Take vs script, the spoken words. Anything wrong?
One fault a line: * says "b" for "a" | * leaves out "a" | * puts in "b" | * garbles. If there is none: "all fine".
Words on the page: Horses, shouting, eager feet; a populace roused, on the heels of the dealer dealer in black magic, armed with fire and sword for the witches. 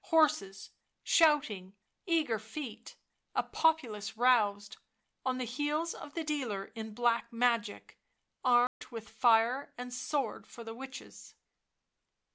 * leaves out "dealer"